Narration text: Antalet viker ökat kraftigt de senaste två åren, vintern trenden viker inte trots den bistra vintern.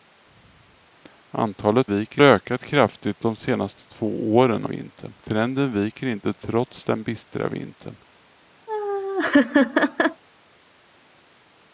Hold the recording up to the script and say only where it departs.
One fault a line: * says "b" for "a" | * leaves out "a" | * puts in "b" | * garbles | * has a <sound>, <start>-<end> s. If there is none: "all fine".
* has a laugh, 8.7-10.2 s